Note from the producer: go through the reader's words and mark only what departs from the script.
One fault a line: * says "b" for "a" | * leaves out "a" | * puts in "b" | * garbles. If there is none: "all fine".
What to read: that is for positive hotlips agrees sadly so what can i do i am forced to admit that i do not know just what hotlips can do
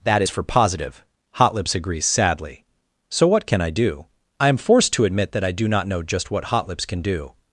all fine